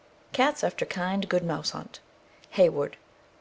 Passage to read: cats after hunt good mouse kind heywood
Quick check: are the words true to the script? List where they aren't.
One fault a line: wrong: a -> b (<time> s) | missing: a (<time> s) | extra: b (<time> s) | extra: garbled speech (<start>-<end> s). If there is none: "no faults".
wrong: hunt -> kind (0.8 s)
wrong: kind -> hunt (1.7 s)